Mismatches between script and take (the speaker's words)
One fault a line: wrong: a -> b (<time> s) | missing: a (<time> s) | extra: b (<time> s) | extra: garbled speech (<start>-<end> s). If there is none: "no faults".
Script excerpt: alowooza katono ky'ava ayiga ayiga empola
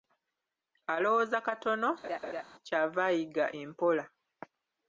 missing: ayiga (3.4 s)